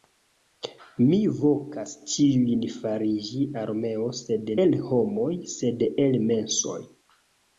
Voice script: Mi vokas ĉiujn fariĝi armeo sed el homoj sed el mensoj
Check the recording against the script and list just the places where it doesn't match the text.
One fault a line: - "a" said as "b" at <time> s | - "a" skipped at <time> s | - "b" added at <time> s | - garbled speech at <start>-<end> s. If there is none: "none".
none